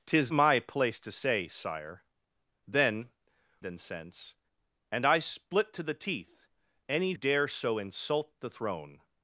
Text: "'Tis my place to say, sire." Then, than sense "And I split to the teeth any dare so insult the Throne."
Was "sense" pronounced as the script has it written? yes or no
yes